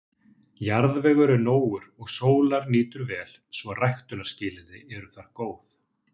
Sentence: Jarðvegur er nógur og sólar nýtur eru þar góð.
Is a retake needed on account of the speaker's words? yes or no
yes